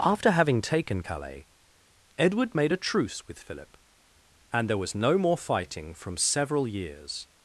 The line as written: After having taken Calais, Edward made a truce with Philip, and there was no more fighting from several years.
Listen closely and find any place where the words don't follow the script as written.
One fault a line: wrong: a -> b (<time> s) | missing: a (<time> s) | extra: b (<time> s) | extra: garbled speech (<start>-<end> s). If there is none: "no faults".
no faults